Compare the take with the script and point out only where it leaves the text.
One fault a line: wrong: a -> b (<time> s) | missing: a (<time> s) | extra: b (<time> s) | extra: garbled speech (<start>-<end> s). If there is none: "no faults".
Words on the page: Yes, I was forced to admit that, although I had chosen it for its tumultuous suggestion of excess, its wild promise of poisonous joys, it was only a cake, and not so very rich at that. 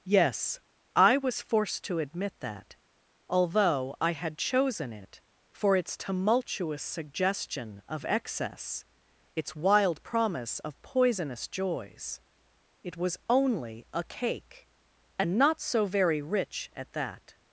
no faults